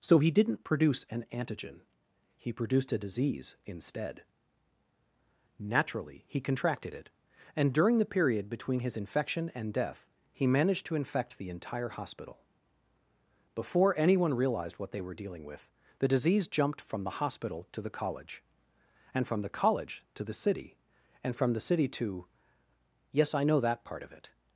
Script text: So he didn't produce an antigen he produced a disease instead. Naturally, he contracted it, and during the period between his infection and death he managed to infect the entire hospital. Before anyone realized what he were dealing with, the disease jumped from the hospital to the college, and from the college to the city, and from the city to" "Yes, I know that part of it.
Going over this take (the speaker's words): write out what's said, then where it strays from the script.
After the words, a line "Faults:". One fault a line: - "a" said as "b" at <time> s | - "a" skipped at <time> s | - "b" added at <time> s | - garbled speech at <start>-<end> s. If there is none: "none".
So he didn't produce an antigen he produced a disease instead. Naturally, he contracted it, and during the period between his infection and death he managed to infect the entire hospital. Before anyone realized what they were dealing with, the disease jumped from the hospital to the college, and from the college to the city, and from the city to" "Yes, I know that part of it.
Faults:
- "he" said as "they" at 14.9 s